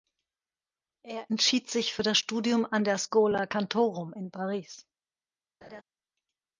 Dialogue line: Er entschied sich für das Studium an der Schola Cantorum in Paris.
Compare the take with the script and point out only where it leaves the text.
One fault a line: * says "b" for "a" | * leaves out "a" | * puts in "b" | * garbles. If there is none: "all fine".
all fine